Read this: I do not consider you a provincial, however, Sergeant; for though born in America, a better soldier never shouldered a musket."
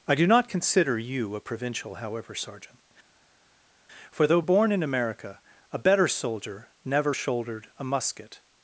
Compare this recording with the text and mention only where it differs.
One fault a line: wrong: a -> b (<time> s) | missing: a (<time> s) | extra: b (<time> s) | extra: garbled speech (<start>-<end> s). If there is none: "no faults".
no faults